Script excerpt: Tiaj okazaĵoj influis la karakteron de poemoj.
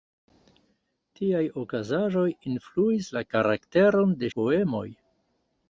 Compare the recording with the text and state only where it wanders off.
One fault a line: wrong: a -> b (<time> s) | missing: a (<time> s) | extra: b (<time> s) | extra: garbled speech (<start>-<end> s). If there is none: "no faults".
no faults